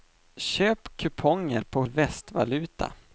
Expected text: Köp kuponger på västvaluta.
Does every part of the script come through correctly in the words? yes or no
yes